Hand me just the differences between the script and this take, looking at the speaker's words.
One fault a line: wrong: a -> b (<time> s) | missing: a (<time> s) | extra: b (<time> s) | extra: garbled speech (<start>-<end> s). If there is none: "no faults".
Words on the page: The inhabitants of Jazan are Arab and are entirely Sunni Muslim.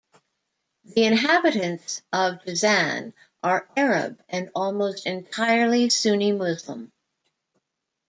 wrong: are -> almost (4.5 s)